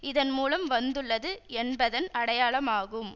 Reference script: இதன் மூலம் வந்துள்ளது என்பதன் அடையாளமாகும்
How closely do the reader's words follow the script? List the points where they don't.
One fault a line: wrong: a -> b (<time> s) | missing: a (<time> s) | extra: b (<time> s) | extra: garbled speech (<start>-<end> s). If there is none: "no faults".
no faults